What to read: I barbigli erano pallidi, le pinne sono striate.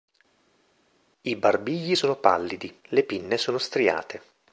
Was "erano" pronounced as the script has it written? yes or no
no